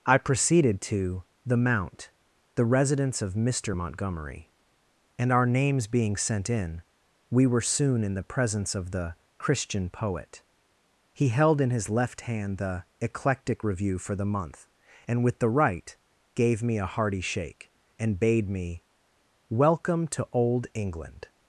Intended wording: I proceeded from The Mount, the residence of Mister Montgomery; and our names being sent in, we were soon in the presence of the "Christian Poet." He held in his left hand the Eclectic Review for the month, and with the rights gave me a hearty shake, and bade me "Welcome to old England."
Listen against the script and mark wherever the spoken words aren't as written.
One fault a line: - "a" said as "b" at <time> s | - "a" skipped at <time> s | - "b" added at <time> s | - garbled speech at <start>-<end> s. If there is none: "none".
- "from" said as "to" at 0.8 s
- "rights" said as "right" at 15.5 s